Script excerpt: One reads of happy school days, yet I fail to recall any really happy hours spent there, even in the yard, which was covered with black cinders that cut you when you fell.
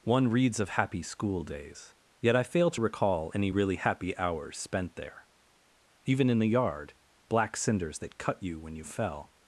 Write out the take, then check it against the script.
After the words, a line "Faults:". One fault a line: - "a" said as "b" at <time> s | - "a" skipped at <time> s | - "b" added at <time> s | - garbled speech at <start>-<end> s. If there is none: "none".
One reads of happy school days, yet I fail to recall any really happy hours spent there, even in the yard, black cinders that cut you when you fell.
Faults:
- "which was covered with" skipped at 6.9 s